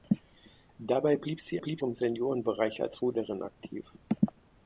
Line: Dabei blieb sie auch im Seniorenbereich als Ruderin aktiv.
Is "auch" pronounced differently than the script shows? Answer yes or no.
yes